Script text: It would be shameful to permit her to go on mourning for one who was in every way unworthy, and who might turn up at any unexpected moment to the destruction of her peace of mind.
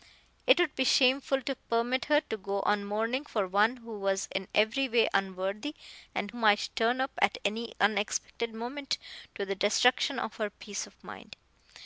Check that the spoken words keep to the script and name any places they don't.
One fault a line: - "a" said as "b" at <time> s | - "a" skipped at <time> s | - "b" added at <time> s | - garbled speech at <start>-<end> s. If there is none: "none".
- "who" skipped at 6.3 s